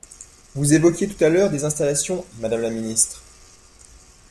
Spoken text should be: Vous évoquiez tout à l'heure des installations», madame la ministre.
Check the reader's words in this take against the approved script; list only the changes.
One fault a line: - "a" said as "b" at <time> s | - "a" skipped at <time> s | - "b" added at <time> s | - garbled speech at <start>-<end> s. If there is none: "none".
none